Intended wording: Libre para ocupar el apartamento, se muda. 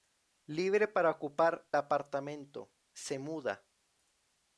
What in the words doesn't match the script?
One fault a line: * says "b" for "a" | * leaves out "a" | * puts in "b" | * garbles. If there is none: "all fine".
* leaves out "el"